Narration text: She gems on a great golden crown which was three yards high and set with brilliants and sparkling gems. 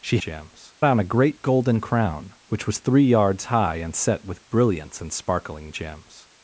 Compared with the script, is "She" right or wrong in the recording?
right